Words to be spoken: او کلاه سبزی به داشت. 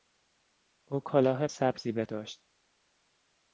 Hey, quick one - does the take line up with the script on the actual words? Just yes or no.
yes